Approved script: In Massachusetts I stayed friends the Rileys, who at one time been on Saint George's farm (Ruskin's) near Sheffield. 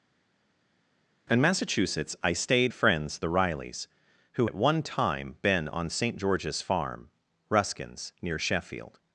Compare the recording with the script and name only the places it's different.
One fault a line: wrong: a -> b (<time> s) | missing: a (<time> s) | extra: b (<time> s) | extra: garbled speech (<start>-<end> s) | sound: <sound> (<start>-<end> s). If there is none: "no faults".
no faults